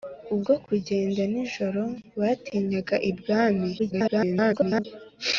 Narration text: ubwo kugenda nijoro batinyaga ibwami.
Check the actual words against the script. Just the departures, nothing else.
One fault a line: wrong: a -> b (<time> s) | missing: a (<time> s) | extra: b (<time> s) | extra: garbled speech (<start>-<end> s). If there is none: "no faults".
extra: garbled speech (3.8-4.8 s)